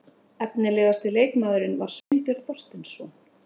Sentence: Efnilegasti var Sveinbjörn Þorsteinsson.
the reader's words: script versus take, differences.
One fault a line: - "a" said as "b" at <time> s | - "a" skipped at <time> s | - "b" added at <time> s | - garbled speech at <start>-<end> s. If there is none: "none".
- "leikmaðurinn" added at 1.2 s